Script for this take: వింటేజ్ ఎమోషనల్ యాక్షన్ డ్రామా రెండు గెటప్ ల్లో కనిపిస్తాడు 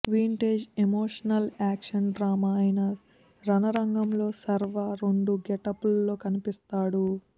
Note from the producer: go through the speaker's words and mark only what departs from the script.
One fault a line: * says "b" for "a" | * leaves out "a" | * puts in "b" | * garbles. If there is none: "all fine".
* puts in "అయిన రణరంగంలో శర్వా"